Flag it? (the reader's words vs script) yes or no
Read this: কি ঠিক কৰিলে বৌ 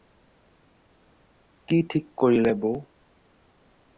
no